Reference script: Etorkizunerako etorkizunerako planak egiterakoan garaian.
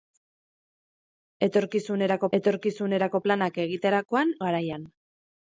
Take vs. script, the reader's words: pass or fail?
pass